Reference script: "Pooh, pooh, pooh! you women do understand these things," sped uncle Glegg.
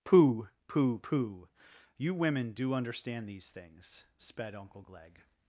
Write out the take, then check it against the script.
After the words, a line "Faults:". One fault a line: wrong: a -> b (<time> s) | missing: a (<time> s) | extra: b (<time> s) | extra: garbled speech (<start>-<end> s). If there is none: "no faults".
"Pooh, pooh, pooh! you women do understand these things," sped uncle Glegg.
Faults:
no faults